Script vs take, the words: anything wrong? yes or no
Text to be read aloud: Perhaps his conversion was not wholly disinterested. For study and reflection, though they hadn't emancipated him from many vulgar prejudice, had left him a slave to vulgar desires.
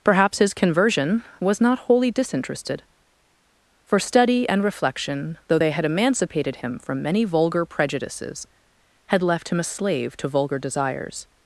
yes